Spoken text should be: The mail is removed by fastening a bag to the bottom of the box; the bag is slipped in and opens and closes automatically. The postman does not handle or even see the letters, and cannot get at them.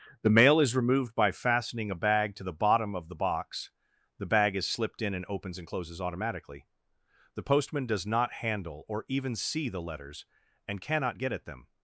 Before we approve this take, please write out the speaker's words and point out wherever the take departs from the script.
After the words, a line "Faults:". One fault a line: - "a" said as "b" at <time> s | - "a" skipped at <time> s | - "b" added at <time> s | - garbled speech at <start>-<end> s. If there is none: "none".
The mail is removed by fastening a bag to the bottom of the box; the bag is slipped in and opens and closes automatically. The postman does not handle or even see the letters, and cannot get at them.
Faults:
none